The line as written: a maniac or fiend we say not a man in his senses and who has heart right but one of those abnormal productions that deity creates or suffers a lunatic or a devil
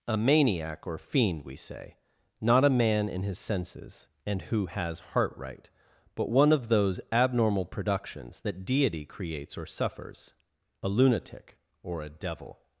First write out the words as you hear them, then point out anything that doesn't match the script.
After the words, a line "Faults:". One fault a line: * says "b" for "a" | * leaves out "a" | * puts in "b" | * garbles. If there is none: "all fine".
a maniac or fiend we say not a man in his senses and who has heart right but one of those abnormal productions that deity creates or suffers a lunatic or a devil
Faults:
all fine